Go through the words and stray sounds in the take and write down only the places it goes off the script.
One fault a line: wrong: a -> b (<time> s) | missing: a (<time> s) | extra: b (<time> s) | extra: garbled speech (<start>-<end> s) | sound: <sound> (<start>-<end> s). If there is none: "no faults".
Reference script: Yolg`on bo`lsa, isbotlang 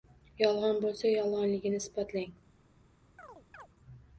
extra: yolg`onligini (1.1 s)
sound: chirp (3.2-3.7 s)